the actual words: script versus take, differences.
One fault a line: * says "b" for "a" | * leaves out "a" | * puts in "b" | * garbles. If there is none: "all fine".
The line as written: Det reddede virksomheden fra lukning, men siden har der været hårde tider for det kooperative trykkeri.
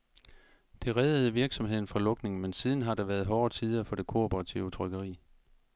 all fine